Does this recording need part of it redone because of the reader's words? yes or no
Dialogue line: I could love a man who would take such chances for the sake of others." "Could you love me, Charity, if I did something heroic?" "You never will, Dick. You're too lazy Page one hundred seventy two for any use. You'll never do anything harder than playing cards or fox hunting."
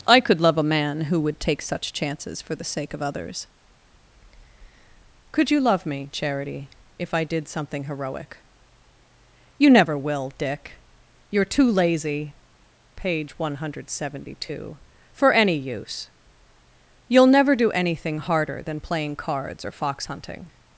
no